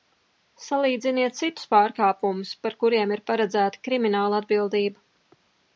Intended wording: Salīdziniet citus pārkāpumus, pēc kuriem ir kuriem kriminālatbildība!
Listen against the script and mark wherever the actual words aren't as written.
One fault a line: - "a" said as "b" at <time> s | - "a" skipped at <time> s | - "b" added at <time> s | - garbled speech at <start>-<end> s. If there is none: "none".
- "pēc" said as "par" at 2.7 s
- "kuriem" said as "paredzēta" at 3.3 s